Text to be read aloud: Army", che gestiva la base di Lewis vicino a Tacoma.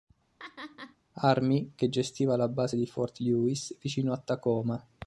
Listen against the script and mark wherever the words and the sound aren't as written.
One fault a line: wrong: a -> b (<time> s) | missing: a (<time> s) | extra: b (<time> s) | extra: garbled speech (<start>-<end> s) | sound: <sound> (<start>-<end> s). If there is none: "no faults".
sound: laugh (0.4-1.0 s)
extra: Fort (2.8 s)